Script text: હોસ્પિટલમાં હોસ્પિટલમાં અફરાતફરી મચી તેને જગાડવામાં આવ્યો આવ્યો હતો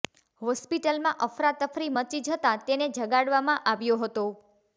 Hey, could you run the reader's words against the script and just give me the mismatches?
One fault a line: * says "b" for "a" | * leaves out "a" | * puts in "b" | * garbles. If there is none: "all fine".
* leaves out "હોસ્પિટલમાં"
* puts in "જતાં"
* leaves out "આવ્યો"